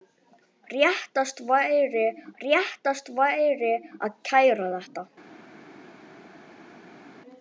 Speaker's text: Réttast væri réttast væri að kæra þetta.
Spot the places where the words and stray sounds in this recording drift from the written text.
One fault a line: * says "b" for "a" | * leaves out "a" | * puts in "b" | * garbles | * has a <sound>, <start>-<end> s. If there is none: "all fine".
all fine